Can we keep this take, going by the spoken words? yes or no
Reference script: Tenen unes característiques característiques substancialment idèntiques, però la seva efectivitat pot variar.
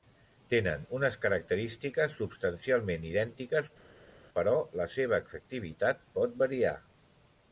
no